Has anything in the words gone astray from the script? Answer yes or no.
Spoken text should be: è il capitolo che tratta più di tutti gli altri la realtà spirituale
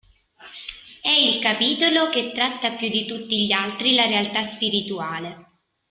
no